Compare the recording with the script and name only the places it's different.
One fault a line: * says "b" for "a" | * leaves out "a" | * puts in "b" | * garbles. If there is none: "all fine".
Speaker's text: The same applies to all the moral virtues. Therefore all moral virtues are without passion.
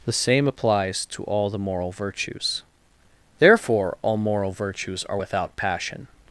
all fine